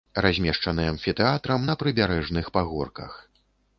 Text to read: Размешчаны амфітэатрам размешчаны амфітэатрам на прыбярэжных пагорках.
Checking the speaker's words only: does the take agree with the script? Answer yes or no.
no